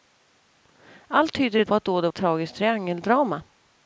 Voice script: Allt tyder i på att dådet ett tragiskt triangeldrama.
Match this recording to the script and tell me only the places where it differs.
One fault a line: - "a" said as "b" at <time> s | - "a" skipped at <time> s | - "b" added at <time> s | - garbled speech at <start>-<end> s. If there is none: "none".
none